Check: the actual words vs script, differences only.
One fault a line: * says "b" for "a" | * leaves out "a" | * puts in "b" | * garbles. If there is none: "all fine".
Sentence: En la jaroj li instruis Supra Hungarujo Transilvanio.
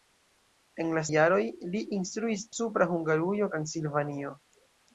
all fine